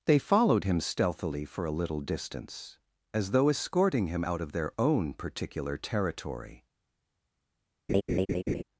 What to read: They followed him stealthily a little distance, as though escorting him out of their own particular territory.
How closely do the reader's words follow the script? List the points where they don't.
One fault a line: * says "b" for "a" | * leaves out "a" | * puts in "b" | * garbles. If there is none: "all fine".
* puts in "for"